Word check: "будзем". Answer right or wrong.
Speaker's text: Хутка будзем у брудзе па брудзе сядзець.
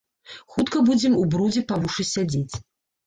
right